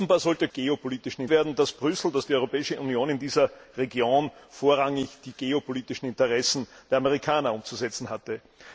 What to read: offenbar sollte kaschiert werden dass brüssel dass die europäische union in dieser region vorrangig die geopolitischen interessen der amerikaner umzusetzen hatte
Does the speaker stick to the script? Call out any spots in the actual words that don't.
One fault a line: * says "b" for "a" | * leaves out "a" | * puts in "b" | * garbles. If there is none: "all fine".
* says "geopolitischen" for "kaschiert"